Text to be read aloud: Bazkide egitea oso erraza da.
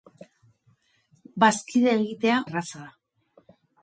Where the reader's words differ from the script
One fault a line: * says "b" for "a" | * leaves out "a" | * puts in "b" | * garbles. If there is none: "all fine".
* leaves out "oso"